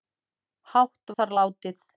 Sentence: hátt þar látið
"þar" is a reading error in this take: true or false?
false